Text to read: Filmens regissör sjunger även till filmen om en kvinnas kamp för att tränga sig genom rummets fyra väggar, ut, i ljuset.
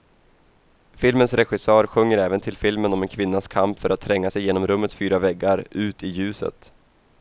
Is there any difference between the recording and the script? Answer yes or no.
no